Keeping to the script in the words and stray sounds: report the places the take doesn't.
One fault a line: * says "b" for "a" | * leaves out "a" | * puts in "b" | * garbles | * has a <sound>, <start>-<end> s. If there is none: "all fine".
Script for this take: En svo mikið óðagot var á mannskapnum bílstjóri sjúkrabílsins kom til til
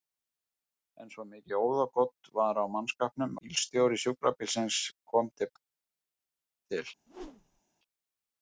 * has a whoosh, 7.1-7.6 s